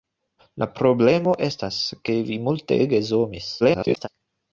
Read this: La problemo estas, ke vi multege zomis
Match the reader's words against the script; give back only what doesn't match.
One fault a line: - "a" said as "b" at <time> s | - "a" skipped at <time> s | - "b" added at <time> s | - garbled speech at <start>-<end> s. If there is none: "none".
- garbled speech at 3.6-4.1 s